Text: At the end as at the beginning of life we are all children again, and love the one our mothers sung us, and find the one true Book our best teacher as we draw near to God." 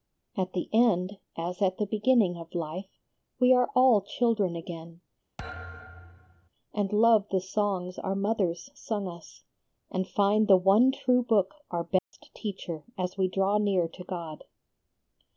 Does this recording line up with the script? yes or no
no